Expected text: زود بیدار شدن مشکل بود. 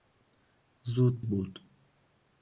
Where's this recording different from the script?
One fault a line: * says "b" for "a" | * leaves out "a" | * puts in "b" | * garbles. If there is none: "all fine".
* leaves out "بیدار شدن مشکل"